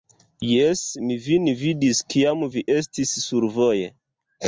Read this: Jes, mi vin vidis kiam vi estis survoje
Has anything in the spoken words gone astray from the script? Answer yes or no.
no